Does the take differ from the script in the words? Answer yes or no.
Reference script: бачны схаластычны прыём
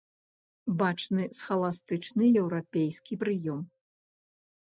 yes